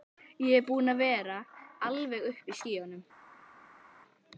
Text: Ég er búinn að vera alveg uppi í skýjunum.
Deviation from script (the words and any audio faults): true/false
false